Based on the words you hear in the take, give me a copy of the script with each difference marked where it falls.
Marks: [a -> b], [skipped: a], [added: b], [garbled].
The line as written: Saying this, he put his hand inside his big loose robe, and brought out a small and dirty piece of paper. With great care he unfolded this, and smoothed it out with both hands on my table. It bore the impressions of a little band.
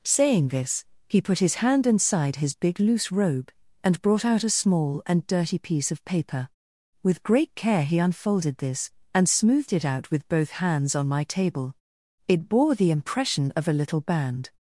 Saying this, he put his hand inside his big loose robe, and brought out a small and dirty piece of paper. With great care he unfolded this, and smoothed it out with both hands on my table. It bore the [impressions -> impression] of a little band.